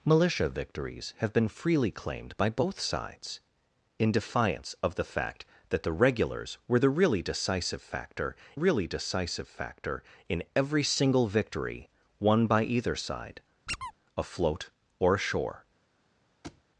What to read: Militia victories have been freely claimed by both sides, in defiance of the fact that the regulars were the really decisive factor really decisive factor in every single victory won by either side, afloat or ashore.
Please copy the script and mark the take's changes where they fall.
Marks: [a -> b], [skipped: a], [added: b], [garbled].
Militia victories have been freely claimed by both sides, in defiance of the fact that the regulars were the really decisive factor really decisive factor in every single victory won by either side, afloat or ashore.